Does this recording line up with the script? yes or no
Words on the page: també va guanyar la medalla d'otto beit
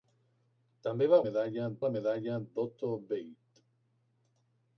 no